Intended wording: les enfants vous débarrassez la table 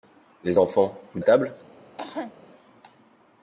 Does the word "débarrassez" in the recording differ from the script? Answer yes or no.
yes